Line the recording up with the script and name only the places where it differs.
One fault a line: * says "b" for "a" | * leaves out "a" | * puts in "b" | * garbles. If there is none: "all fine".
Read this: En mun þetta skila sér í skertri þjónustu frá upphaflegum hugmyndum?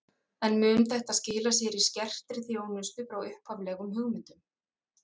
all fine